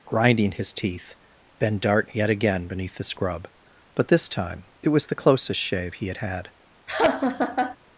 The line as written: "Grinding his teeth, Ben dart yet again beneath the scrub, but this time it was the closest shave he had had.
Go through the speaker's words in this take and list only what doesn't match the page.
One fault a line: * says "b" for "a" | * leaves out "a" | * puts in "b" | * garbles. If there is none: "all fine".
all fine